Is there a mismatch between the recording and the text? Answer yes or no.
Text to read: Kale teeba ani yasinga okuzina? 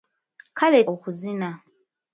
yes